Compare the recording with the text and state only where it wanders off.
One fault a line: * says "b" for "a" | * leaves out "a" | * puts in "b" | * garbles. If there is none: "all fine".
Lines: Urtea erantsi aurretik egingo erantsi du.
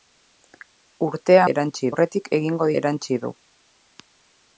all fine